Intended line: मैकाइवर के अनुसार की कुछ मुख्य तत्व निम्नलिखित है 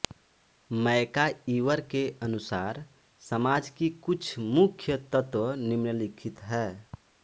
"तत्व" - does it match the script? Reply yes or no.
yes